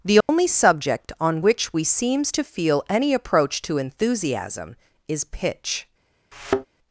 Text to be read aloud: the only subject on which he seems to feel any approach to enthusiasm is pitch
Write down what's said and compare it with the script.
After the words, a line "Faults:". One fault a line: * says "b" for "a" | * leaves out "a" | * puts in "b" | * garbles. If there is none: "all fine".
the only subject on which we seems to feel any approach to enthusiasm is pitch
Faults:
* says "we" for "he"